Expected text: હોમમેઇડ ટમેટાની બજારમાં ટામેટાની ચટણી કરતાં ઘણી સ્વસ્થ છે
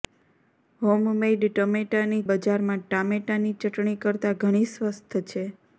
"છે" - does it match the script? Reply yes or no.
yes